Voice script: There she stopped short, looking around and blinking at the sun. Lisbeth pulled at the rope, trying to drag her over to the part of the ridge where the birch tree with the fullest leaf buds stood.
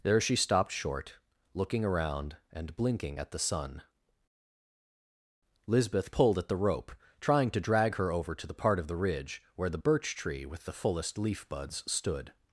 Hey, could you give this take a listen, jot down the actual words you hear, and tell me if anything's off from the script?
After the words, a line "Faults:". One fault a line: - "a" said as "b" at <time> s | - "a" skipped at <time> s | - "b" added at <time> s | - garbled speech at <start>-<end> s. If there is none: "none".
There she stopped short, looking around and blinking at the sun. Lisbeth pulled at the rope, trying to drag her over to the part of the ridge where the birch tree with the fullest leaf buds stood.
Faults:
none